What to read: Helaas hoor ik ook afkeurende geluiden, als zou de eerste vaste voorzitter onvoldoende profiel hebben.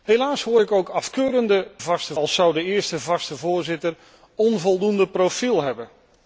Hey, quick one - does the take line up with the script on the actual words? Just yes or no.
no